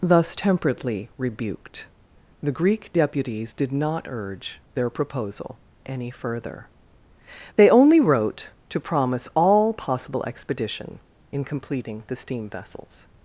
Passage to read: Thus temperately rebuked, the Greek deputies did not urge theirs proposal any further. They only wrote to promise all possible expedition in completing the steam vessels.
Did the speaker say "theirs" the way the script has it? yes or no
no